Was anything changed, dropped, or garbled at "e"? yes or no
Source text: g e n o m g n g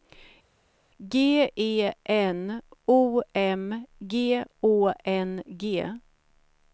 no